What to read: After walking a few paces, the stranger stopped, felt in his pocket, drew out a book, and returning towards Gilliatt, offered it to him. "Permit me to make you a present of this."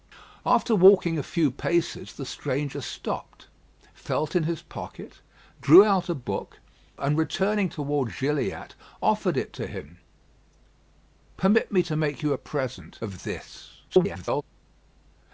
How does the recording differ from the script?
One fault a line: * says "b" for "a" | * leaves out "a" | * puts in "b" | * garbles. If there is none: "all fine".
* garbles